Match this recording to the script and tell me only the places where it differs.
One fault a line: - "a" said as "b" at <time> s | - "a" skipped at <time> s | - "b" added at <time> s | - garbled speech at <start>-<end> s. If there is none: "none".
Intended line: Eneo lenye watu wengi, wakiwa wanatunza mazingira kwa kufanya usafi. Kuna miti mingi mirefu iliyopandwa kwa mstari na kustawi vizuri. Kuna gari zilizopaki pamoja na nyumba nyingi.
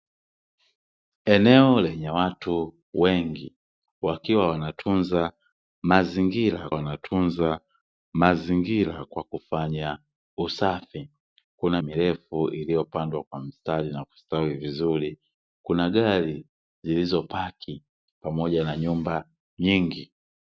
- "wanatunza mazingira" added at 6.7 s
- "miti mingi" skipped at 11.8 s